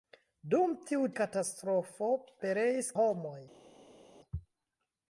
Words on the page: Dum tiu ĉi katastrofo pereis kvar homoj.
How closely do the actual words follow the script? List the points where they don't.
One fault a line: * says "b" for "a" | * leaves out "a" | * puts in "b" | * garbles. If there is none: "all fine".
* leaves out "ĉi"
* leaves out "kvar"